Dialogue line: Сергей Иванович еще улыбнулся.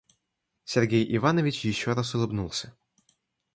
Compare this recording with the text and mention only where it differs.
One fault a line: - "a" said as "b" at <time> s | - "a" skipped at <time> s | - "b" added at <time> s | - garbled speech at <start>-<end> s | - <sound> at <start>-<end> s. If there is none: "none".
- "раз" added at 1.9 s